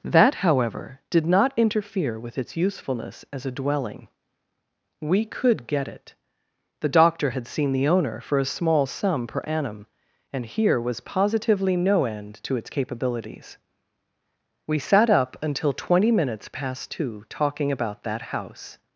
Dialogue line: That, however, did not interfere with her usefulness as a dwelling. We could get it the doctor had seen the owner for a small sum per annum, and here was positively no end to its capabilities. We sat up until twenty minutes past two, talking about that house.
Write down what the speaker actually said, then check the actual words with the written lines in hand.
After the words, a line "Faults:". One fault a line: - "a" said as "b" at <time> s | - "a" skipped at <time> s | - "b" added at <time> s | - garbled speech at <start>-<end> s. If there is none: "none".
That, however, did not interfere with its usefulness as a dwelling. We could get it the doctor had seen the owner for a small sum per annum, and here was positively no end to its capabilities. We sat up until twenty minutes past two, talking about that house.
Faults:
- "her" said as "its" at 2.4 s